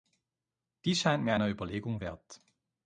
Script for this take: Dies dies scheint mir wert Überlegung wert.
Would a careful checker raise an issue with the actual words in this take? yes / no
yes